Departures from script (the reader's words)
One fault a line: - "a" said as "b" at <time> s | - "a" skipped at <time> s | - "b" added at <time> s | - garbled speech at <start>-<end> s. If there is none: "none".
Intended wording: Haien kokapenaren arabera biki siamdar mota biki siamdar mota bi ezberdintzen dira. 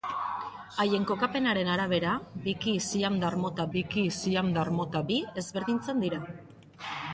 none